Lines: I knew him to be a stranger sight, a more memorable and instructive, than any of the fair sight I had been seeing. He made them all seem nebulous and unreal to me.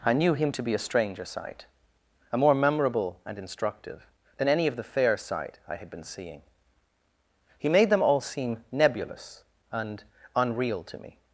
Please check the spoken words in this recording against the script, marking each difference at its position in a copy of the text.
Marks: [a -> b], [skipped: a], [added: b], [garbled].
I knew him to be a stranger sight, a more memorable and instructive, than any of the fair sight I had been seeing. He made them all seem nebulous and unreal to me.